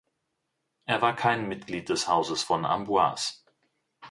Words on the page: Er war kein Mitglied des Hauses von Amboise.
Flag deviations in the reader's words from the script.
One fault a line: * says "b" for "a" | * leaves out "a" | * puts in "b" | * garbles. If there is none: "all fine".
all fine